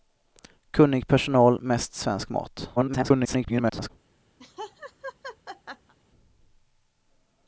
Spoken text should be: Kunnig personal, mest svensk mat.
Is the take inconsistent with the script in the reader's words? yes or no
yes